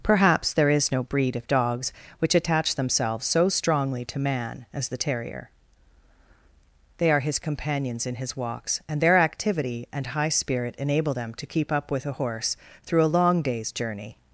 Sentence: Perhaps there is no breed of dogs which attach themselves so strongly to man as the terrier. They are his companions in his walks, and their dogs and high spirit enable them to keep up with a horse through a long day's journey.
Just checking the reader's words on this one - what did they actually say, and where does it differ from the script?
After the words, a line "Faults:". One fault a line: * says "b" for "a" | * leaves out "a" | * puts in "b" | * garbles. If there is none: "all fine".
Perhaps there is no breed of dogs which attach themselves so strongly to man as the terrier. They are his companions in his walks, and their activity and high spirit enable them to keep up with a horse through a long day's journey.
Faults:
* says "activity" for "dogs"